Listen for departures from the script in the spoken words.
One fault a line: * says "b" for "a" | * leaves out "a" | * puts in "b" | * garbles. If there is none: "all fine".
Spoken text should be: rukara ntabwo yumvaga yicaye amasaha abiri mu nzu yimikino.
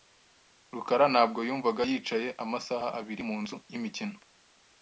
all fine